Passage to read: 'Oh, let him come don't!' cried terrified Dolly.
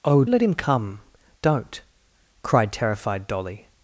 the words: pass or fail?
pass